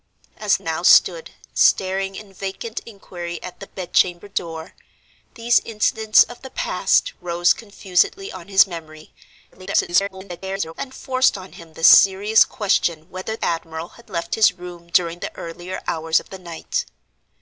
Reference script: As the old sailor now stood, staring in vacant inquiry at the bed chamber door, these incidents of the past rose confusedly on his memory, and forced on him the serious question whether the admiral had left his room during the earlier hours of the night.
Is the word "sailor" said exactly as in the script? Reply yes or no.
no